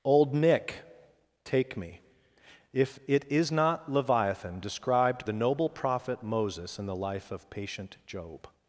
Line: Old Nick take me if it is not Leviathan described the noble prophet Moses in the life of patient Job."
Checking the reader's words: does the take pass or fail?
pass